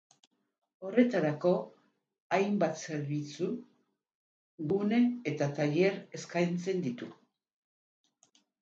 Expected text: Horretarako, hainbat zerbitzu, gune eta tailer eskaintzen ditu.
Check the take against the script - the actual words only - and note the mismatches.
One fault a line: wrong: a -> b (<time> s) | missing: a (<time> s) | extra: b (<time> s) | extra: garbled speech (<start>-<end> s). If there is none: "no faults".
no faults